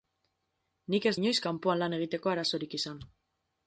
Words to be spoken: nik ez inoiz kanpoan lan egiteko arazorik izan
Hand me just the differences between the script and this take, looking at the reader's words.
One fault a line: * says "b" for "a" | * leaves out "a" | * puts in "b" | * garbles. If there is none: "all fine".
all fine